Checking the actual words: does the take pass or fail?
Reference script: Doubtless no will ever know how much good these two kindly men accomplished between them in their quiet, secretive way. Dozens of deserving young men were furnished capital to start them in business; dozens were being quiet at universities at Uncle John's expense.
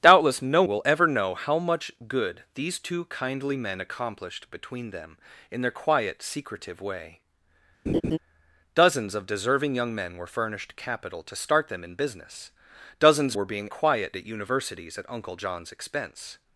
pass